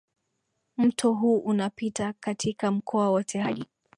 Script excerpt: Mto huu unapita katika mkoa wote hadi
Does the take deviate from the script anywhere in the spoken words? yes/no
no